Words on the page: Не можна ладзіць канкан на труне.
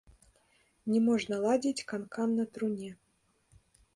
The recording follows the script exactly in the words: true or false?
true